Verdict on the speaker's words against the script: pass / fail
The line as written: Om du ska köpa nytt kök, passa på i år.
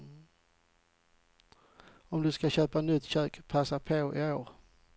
pass